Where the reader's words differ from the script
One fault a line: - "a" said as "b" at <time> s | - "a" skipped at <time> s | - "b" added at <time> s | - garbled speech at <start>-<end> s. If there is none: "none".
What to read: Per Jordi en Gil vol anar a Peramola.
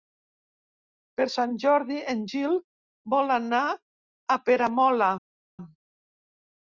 - "Sant" added at 1.3 s